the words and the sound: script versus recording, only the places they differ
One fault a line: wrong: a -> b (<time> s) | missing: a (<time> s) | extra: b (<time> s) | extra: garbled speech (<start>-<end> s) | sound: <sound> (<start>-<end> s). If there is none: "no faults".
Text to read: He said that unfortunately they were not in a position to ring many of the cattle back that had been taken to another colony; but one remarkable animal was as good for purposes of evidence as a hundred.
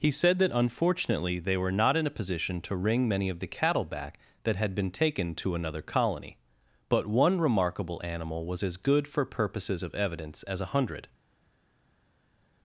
no faults